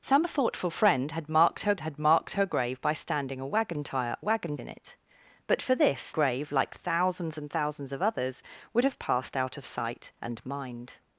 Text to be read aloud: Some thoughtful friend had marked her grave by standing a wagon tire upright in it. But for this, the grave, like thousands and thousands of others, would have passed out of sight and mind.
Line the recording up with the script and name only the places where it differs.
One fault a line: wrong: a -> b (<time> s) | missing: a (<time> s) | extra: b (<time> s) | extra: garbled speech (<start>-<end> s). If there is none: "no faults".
extra: had marked her (1.8 s)
wrong: upright -> wagon (4.2 s)
missing: the (6.1 s)